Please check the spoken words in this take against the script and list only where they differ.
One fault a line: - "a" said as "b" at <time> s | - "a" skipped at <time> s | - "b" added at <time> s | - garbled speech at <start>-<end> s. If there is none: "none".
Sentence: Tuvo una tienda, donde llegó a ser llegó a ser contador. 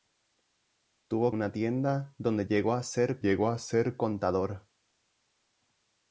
none